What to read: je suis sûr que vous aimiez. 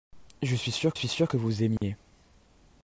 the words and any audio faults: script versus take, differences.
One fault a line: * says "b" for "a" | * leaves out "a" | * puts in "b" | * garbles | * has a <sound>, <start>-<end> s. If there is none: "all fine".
* puts in "suis sûr"
* has a dropout, 1.8-1.8 s